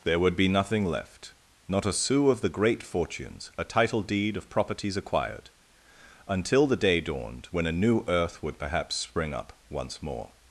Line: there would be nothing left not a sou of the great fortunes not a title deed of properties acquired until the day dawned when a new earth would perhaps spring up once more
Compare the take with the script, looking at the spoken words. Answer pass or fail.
fail